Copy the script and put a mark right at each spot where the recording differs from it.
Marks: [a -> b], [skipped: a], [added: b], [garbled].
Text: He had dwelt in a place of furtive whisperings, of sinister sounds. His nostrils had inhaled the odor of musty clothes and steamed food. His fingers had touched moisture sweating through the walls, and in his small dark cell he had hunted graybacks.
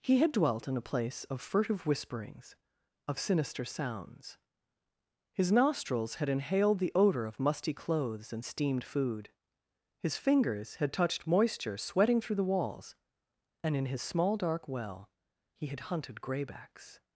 He had dwelt in a place of furtive whisperings, of sinister sounds. His nostrils had inhaled the odor of musty clothes and steamed food. His fingers had touched moisture sweating through the walls, and in his small dark [cell -> well] he had hunted graybacks.